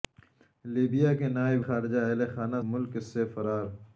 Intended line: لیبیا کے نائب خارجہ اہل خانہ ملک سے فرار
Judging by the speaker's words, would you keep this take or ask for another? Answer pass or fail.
pass